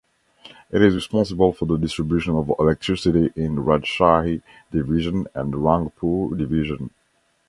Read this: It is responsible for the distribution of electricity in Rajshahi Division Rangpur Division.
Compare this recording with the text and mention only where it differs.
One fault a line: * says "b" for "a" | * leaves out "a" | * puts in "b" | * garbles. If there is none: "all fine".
* puts in "and"